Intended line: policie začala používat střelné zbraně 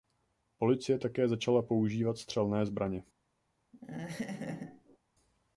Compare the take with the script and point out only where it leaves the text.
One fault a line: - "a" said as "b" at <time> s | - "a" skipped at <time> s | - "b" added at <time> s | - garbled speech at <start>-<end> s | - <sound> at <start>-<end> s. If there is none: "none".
- "také" added at 1.0 s
- laugh at 3.7-5.0 s